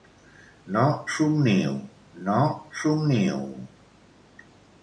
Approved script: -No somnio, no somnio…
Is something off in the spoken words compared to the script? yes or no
no